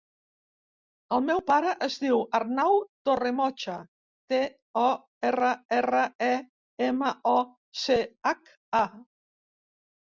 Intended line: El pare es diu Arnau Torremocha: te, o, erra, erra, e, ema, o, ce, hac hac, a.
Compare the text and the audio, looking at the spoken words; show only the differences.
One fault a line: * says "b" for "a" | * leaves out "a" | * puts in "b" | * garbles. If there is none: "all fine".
* puts in "meu"
* leaves out "hac"